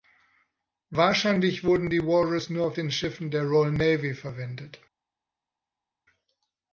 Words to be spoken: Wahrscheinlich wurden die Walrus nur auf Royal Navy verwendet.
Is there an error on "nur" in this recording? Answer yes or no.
no